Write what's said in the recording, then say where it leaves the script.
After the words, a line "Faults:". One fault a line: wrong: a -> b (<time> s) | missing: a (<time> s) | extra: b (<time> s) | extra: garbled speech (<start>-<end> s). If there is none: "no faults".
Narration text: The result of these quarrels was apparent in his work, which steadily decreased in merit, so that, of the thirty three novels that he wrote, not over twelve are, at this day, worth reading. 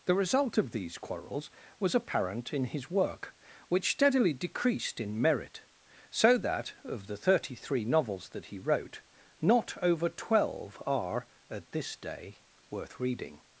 The result of these quarrels was apparent in his work, which steadily decreased in merit, so that, of the thirty three novels that he wrote, not over twelve are, at this day, worth reading.
Faults:
no faults